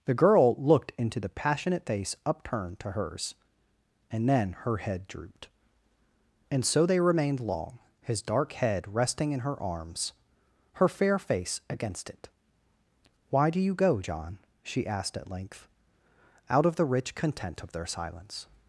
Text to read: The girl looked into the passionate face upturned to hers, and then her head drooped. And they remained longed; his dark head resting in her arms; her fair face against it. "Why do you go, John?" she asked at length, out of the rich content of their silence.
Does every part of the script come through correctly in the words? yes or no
no